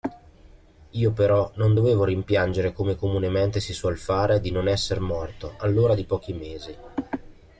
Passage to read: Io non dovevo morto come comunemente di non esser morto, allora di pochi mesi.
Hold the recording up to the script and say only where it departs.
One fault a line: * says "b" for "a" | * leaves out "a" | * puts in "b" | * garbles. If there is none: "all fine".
* puts in "però"
* says "rimpiangere" for "morto"
* puts in "si suol fare"